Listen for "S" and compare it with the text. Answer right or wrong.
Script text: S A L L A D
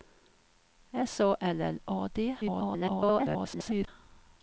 right